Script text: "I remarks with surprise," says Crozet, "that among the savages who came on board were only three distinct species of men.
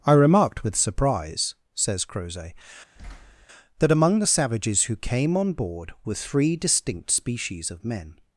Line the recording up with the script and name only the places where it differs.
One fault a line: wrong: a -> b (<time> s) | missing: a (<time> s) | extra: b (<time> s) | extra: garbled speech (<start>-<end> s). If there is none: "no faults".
wrong: remarks -> remarked (0.1 s)
missing: only (6.1 s)